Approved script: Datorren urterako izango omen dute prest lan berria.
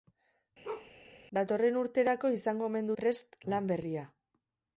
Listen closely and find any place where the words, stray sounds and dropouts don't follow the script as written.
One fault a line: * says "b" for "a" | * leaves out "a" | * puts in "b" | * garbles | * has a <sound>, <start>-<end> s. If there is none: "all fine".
* has a bark, 0.6-0.9 s
* leaves out "dute"